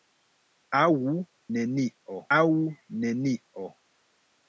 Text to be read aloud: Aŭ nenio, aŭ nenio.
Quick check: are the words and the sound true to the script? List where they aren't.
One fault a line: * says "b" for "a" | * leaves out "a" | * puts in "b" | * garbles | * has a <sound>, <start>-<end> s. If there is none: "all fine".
all fine